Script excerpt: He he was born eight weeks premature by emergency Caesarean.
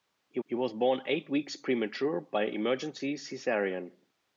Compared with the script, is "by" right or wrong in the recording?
right